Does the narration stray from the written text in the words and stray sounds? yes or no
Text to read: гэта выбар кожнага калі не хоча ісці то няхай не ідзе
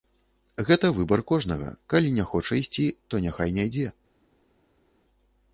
no